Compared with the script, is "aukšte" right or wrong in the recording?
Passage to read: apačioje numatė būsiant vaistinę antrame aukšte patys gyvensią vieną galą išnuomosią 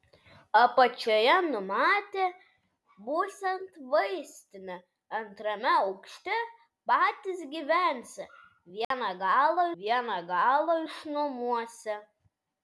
right